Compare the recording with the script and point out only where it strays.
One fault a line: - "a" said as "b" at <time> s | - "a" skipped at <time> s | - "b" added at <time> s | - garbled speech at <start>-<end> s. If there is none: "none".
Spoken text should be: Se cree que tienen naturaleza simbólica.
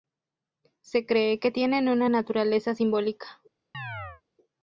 - "una" added at 1.9 s